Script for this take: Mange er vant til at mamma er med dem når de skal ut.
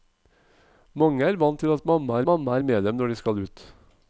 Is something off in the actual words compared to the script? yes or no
yes